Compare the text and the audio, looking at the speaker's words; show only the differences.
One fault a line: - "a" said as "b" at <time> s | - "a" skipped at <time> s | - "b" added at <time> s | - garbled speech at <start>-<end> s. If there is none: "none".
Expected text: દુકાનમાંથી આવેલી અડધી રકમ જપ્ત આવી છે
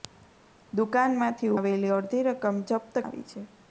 none